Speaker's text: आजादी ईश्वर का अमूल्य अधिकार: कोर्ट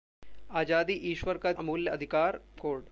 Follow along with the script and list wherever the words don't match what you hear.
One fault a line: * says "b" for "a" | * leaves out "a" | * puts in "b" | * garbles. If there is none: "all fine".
all fine